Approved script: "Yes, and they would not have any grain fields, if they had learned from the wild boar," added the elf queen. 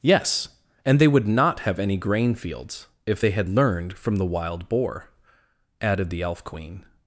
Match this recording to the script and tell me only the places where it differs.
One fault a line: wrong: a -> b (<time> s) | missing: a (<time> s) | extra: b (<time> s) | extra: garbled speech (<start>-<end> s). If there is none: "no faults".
no faults